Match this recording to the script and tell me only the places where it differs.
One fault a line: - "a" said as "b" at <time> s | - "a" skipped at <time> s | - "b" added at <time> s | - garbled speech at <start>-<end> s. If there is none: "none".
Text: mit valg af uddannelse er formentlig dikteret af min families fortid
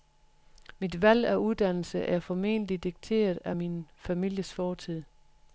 none